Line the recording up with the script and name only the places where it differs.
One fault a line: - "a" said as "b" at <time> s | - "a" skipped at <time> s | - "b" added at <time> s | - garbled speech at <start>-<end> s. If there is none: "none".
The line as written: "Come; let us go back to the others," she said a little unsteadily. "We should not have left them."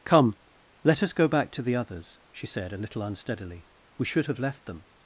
- "not" skipped at 4.3 s